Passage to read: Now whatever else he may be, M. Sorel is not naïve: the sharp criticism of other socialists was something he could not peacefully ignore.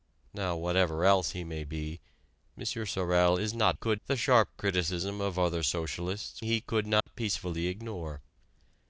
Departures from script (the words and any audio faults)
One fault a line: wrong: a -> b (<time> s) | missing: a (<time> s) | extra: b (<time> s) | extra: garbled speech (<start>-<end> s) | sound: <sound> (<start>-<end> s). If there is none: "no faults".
wrong: naïve -> could (3.7 s)
missing: was something (6.4 s)
sound: dropout (7.0-7.1 s)